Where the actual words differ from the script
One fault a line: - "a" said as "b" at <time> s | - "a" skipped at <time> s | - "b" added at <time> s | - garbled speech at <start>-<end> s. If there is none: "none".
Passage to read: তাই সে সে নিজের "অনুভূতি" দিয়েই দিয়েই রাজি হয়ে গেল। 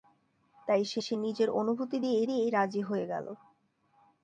none